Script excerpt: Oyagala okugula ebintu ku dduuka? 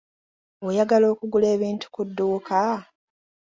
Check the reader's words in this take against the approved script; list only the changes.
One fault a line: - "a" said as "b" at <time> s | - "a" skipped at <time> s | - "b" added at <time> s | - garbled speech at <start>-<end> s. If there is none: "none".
none